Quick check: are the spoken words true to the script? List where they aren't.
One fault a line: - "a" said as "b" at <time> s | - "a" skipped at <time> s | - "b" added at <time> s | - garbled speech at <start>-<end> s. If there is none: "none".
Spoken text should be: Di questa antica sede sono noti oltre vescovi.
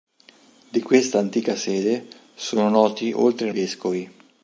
none